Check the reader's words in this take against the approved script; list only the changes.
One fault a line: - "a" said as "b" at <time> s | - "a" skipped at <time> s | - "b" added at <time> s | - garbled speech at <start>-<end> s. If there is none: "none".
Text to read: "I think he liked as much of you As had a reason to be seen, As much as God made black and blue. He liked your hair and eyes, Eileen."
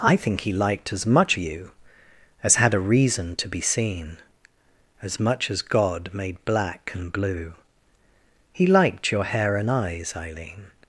- "of" skipped at 1.4 s